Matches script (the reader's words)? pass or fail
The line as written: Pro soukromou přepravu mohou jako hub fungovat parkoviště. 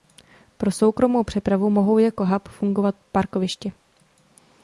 pass